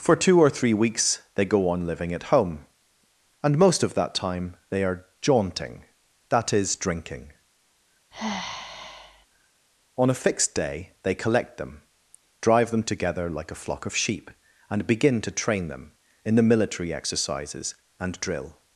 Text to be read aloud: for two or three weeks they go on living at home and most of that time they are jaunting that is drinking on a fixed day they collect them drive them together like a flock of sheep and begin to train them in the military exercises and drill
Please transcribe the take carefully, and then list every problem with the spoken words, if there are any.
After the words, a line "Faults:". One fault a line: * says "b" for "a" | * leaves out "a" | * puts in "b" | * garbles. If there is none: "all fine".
for two or three weeks they go on living at home and most of that time they are jaunting that is drinking on a fixed day they collect them drive them together like a flock of sheep and begin to train them in the military exercises and drill
Faults:
all fine